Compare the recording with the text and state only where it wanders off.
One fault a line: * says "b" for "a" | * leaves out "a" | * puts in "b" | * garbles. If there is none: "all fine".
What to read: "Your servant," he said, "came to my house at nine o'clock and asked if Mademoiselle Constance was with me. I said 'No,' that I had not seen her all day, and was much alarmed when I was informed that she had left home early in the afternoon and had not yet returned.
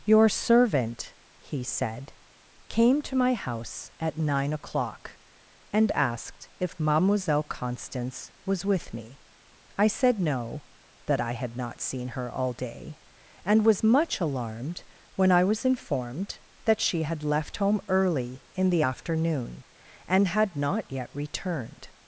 all fine